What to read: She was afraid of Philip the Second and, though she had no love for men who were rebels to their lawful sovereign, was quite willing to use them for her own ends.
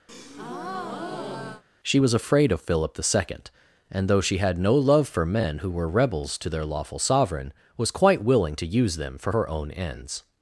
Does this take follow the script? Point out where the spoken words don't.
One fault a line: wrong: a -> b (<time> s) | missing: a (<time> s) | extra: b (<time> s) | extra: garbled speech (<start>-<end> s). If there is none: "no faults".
no faults